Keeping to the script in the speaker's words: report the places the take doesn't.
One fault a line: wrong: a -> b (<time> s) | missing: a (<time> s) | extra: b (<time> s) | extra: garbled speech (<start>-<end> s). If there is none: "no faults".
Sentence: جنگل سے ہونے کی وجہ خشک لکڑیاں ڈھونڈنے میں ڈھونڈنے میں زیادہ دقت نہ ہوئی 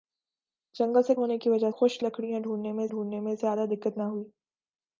no faults